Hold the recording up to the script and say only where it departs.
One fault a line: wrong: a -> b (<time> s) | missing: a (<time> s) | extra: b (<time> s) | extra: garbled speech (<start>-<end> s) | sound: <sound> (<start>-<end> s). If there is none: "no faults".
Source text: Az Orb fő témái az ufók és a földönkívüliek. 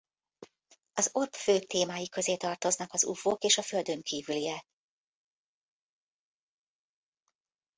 extra: közé tartoznak (2.1 s)